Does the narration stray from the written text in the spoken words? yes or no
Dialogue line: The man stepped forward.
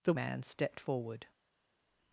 no